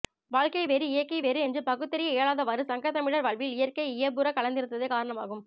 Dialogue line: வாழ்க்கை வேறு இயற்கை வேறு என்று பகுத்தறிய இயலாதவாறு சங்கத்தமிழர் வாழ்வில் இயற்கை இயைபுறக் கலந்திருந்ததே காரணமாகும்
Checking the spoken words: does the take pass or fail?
pass